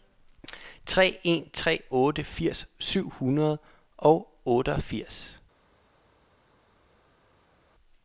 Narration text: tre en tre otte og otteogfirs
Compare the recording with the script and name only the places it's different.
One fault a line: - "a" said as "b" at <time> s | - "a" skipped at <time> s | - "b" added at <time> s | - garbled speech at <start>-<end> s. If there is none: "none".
- "firs syv hundrede" added at 2.2 s